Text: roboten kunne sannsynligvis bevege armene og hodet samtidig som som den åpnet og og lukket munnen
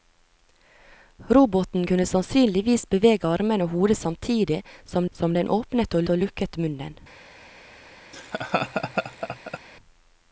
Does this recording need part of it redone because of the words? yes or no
no